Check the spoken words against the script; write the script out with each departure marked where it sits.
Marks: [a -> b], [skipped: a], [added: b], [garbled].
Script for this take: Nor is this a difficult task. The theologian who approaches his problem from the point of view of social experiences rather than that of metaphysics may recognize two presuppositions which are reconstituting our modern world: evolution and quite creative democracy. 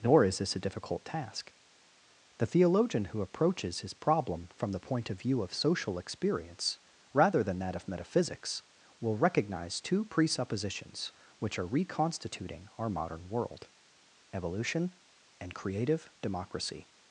Nor is this a difficult task. The theologian who approaches his problem from the point of view of social [experiences -> experience] rather than that of metaphysics [may -> will] recognize two presuppositions which are reconstituting our modern world: evolution and [skipped: quite] creative democracy.